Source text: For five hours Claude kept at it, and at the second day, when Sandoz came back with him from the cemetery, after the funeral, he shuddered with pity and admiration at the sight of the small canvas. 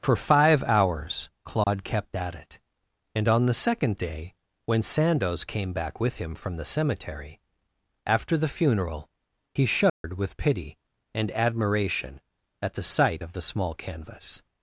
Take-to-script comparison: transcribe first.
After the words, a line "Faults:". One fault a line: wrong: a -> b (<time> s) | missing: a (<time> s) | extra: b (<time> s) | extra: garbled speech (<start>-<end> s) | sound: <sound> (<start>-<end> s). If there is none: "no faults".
For five hours Claude kept at it, and on the second day, when Sandoz came back with him from the cemetery, after the funeral, he shuddered with pity and admiration at the sight of the small canvas.
Faults:
sound: dropout (1.6-1.7 s)
wrong: at -> on (3.3 s)
sound: dropout (9.9-10.0 s)